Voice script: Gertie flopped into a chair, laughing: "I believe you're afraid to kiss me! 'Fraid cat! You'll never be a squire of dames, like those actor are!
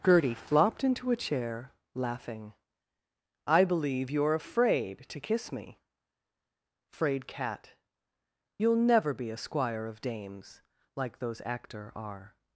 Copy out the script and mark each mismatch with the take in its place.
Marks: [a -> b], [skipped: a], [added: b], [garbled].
Gertie flopped into a chair, laughing: "I believe you're afraid to kiss me! 'Fraid cat! You'll never be a squire of dames, like those actor are!